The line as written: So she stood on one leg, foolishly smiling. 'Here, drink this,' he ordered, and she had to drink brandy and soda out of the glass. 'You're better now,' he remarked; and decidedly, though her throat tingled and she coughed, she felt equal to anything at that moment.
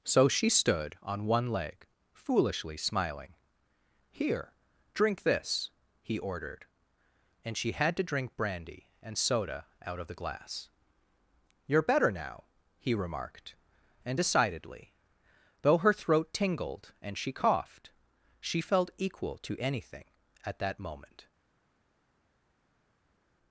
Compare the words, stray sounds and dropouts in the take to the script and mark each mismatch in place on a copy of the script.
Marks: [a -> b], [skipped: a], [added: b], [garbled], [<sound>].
So she stood on one leg, foolishly smiling. 'Here, drink this,' he ordered, and she had to drink brandy and soda out of the glass. 'You're better now,' he remarked; and decidedly, though her throat tingled and she coughed, she felt equal to anything at that moment.